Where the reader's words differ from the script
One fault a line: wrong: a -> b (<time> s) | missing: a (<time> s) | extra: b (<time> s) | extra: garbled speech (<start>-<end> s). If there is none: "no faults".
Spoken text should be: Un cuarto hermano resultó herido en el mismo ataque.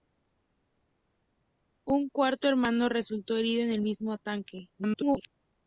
extra: garbled speech (4.8-5.3 s)